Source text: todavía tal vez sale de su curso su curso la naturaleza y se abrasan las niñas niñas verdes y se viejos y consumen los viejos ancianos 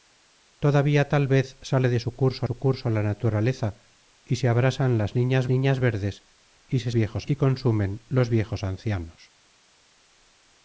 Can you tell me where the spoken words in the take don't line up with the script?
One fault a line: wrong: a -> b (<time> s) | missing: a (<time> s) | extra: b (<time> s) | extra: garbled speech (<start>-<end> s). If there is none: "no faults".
no faults